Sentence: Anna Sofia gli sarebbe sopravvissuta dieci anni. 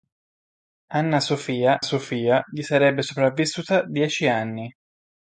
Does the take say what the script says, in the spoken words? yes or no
no